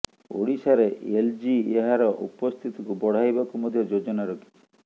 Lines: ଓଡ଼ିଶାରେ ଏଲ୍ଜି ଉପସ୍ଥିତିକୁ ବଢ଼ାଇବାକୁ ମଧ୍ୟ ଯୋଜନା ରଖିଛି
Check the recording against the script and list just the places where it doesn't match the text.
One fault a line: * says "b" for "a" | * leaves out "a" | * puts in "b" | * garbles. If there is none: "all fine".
* puts in "ଏହାର"